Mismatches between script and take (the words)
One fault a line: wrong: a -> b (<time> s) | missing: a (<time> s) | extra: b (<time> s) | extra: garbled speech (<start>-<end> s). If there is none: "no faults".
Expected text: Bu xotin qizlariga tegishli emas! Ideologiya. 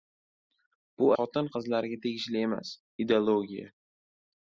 no faults